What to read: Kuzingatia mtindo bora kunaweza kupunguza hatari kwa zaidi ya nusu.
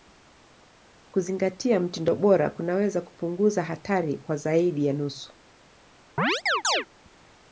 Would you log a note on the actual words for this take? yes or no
no